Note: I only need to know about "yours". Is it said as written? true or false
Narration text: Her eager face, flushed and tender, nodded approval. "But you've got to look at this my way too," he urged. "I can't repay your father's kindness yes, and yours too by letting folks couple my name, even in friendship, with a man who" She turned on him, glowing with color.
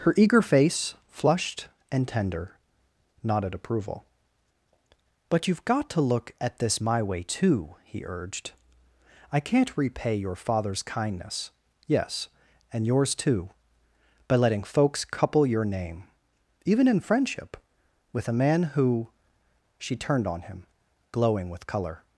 true